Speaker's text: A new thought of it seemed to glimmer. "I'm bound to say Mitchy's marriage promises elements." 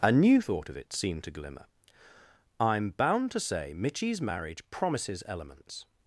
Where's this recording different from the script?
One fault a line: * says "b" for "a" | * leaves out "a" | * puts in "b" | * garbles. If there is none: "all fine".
all fine